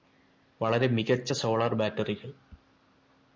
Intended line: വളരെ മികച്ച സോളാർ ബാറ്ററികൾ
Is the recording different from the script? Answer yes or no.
no